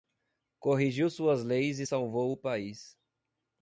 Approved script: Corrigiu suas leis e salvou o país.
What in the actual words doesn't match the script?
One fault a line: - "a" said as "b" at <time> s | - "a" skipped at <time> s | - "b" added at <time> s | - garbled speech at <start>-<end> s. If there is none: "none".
none